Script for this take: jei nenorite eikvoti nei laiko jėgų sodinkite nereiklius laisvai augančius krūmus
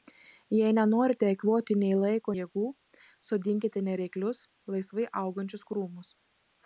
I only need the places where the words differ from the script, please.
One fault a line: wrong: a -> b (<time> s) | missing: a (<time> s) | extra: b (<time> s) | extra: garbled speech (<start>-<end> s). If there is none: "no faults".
no faults